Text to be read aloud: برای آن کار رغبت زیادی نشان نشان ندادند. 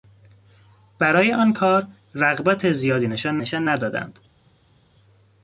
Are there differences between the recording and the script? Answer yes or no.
no